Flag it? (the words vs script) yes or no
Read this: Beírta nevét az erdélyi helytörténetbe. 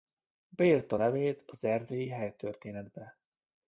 no